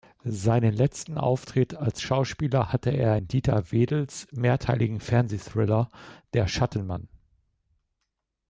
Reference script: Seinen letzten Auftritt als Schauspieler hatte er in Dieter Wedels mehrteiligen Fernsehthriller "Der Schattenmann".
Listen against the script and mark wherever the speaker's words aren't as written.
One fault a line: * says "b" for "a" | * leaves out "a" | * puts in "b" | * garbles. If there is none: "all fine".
all fine